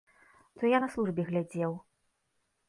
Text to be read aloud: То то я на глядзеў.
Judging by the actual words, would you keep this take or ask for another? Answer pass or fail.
fail